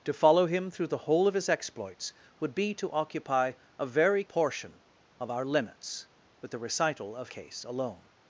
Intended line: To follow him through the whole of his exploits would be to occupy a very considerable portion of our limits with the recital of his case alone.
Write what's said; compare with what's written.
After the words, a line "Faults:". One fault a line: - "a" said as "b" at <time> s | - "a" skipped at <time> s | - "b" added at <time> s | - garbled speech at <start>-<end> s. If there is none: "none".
To follow him through the whole of his exploits would be to occupy a very portion of our limits with the recital of case alone.
Faults:
- "considerable" skipped at 4.2 s
- "his" skipped at 7.3 s